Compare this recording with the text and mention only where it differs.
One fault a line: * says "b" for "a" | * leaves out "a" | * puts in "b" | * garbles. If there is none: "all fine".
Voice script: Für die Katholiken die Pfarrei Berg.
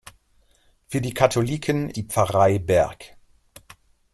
all fine